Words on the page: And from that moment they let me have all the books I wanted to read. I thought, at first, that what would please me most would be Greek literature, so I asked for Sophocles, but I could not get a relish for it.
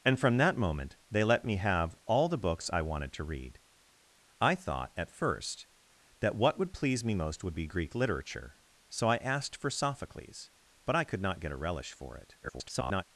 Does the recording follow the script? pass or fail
fail